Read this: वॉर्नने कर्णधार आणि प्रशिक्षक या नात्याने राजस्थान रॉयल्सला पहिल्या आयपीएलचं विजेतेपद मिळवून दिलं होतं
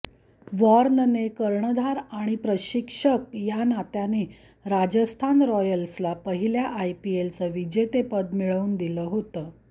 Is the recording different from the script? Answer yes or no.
no